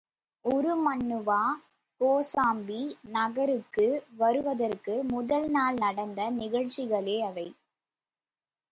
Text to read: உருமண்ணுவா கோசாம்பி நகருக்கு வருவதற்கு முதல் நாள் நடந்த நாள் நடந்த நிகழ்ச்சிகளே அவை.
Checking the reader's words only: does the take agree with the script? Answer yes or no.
no